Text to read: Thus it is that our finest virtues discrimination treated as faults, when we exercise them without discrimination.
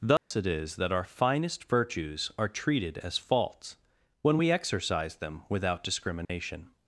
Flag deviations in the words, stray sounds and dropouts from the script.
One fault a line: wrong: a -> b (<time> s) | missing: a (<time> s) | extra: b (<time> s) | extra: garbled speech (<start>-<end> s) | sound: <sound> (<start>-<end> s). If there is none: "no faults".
sound: dropout (0.2-0.3 s)
wrong: discrimination -> are (2.4 s)
sound: dropout (6.2-6.3 s)